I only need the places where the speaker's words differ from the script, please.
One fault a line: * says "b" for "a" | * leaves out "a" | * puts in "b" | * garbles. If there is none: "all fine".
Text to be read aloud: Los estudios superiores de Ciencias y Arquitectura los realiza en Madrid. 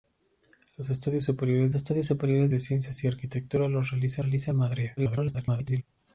* puts in "estudios superiores"
* puts in "realiza"
* garbles